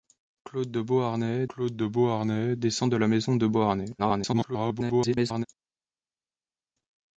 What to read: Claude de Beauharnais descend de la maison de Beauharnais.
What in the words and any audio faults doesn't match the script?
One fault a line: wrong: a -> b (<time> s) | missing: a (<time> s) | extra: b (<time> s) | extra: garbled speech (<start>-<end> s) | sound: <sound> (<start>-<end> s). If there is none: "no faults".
extra: claude de Beauharnais (1.5 s)
extra: garbled speech (4.0-5.5 s)